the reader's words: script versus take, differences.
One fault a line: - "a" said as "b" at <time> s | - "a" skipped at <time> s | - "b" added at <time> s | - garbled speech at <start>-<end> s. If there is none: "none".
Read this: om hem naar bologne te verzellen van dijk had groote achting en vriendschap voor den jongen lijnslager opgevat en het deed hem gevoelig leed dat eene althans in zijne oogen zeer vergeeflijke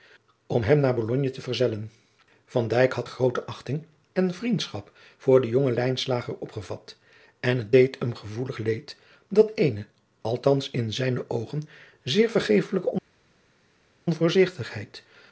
none